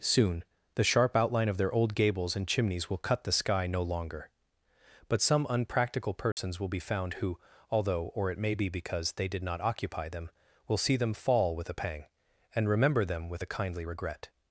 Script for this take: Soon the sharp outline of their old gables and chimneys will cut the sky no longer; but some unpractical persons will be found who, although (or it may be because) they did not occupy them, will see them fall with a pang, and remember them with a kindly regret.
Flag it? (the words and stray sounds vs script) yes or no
yes